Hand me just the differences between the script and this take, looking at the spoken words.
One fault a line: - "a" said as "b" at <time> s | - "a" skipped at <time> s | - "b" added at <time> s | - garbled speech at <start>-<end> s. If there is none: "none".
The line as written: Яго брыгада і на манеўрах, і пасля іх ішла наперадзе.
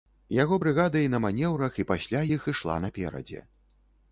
none